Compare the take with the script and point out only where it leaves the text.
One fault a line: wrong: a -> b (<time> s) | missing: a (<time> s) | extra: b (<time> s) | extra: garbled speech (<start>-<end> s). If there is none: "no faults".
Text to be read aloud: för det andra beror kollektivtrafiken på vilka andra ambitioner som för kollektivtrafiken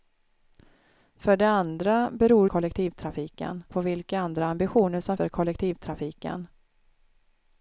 no faults